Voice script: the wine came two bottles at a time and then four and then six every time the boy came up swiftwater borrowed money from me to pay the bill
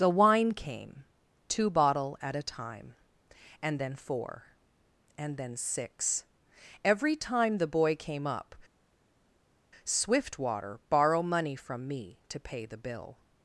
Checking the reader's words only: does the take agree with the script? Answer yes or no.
no